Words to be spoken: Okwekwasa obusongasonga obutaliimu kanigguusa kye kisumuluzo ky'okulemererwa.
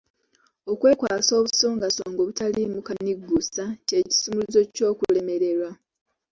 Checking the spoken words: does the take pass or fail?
pass